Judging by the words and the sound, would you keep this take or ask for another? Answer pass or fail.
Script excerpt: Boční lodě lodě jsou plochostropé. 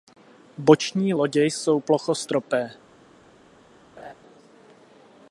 fail